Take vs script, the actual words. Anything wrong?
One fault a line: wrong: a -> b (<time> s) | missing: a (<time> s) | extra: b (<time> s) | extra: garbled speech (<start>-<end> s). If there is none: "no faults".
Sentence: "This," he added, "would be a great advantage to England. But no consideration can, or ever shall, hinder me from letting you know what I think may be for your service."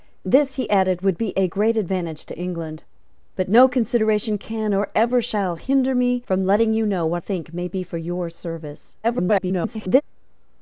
missing: I (7.2 s)
extra: garbled speech (9.0-10.0 s)